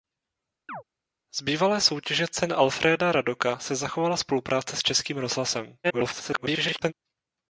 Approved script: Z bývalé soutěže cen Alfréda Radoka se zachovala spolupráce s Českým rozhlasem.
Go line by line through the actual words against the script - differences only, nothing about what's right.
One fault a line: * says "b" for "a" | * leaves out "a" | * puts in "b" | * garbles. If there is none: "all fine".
* garbles